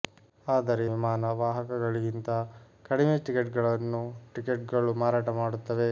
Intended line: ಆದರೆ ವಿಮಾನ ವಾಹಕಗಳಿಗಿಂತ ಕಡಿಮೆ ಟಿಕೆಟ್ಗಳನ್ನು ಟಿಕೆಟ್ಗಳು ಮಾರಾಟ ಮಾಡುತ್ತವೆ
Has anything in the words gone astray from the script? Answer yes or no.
no